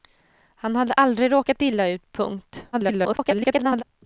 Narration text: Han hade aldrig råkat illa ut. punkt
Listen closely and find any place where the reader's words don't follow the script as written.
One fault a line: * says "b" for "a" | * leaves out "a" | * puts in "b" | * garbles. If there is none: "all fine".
* garbles